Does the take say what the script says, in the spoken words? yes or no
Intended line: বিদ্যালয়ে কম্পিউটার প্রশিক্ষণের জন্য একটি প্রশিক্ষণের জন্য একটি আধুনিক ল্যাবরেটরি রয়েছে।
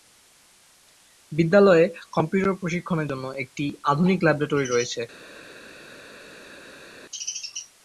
no